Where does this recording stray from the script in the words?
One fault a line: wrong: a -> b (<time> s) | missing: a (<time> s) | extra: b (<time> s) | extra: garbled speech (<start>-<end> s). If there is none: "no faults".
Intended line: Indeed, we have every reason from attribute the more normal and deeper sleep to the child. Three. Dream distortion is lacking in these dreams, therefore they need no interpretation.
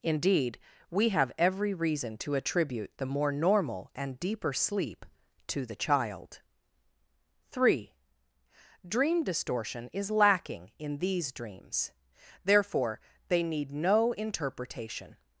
wrong: from -> to (2.2 s)